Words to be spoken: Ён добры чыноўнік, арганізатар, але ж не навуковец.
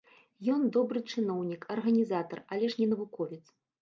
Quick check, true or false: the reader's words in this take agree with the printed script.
true